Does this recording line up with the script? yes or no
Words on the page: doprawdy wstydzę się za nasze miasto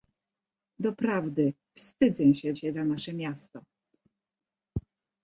no